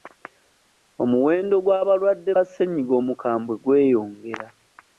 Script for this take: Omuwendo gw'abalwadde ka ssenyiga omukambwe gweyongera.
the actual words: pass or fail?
pass